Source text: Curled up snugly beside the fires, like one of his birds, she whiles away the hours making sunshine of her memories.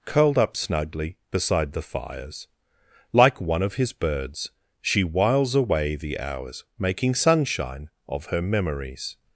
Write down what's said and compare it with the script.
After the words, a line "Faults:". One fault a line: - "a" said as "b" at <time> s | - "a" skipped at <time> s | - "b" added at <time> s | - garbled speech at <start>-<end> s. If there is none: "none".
Curled up snugly beside the fires, like one of his birds, she whiles away the hours making sunshine of her memories.
Faults:
none